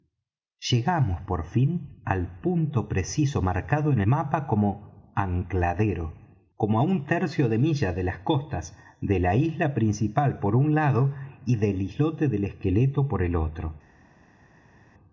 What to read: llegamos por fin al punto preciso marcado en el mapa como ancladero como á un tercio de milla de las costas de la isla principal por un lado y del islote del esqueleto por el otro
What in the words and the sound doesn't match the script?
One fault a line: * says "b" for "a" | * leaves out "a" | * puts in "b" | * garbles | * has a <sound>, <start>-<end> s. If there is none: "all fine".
* leaves out "el"